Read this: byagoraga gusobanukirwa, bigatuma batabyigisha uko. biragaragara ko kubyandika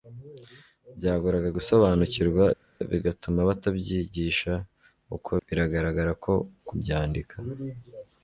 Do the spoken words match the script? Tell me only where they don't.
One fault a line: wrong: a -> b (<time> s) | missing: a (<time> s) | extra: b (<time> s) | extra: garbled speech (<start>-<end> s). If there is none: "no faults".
no faults